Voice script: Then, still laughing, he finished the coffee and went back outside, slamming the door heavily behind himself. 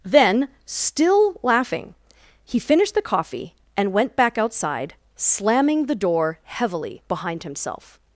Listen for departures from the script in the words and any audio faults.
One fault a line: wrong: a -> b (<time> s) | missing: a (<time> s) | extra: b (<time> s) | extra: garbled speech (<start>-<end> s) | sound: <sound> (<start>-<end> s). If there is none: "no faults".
no faults